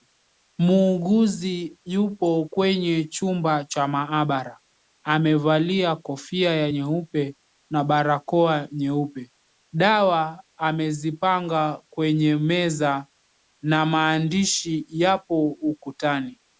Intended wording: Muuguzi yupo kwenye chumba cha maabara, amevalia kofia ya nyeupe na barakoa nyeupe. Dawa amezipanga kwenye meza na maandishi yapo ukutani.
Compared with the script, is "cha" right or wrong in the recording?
right